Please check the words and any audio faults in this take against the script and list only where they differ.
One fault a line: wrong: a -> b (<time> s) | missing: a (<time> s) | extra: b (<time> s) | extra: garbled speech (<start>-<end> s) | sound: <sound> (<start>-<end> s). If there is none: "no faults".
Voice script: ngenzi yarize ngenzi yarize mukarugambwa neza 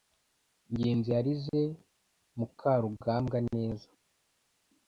missing: ngenzi yarize (1.6 s)